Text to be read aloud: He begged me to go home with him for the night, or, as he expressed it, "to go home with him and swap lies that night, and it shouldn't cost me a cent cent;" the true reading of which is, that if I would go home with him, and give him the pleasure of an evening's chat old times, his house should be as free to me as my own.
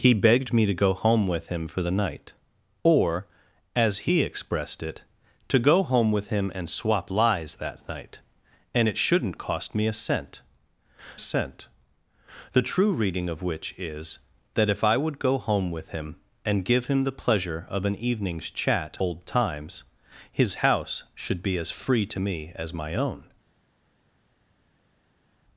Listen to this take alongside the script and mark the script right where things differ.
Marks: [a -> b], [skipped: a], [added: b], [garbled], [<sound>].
He begged me to go home with him for the night, or, as he expressed it, "to go home with him and swap lies that night, and it shouldn't cost me a cent cent;" the true reading of which is, that if I would go home with him, and give him the pleasure of an evening's chat old times, his house should be as free to me as my own.